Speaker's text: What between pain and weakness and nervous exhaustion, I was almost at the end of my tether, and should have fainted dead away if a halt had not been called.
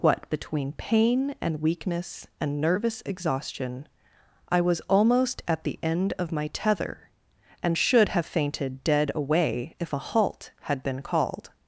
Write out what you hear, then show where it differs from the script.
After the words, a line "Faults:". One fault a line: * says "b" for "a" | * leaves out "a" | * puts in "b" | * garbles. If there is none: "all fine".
What between pain and weakness and nervous exhaustion, I was almost at the end of my tether, and should have fainted dead away if a halt had been called.
Faults:
* leaves out "not"